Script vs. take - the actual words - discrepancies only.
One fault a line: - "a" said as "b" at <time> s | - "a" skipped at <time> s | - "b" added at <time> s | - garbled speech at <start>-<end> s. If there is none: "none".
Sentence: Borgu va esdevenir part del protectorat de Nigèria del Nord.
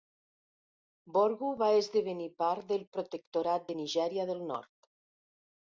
none